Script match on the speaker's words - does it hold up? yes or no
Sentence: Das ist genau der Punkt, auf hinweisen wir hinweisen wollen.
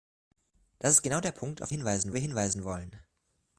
yes